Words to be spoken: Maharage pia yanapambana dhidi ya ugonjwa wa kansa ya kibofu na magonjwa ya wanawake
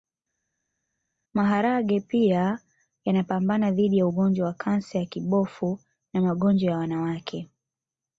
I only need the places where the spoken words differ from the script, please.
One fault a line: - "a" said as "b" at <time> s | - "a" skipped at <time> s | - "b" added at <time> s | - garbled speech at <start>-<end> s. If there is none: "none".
none